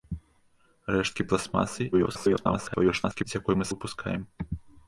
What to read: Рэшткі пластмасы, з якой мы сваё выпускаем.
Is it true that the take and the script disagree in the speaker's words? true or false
true